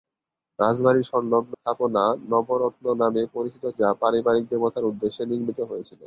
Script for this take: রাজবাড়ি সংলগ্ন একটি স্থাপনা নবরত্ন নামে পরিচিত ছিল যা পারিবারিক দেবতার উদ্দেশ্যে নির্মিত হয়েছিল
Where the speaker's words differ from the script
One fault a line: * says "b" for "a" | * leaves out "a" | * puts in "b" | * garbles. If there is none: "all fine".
* leaves out "একটি"
* leaves out "ছিল"